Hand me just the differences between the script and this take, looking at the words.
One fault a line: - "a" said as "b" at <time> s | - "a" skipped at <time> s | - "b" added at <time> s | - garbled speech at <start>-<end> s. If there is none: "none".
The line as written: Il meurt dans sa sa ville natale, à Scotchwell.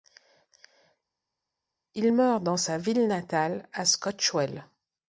- "sa" skipped at 2.8 s